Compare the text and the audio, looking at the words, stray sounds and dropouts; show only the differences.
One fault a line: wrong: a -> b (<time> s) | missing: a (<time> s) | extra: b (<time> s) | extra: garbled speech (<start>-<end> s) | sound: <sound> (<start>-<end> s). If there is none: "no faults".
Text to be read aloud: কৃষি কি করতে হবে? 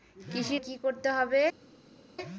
no faults